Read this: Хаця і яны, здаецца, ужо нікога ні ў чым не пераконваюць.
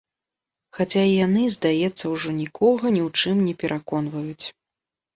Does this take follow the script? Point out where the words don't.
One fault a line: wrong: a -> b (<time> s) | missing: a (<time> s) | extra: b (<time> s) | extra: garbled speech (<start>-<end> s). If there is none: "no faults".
no faults